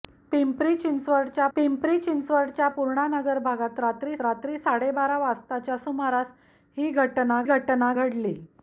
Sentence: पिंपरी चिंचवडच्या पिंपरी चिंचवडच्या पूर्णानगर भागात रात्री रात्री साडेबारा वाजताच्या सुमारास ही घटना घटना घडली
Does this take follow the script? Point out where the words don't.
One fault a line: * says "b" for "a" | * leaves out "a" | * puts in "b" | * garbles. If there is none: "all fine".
all fine